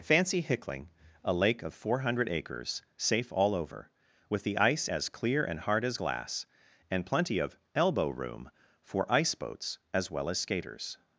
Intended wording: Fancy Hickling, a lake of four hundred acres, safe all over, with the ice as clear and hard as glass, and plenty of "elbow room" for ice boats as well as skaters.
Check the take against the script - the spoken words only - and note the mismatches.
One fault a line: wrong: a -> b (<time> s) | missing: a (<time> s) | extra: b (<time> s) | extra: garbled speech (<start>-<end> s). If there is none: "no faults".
no faults